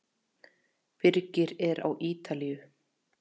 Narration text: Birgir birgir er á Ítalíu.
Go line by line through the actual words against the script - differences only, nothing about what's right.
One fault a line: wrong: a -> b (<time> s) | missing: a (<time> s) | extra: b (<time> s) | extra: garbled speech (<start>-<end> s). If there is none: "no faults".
missing: birgir (1.5 s)